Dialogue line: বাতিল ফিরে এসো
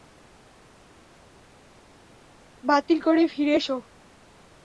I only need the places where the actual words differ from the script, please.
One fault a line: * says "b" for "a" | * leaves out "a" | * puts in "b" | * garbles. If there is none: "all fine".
* puts in "করে"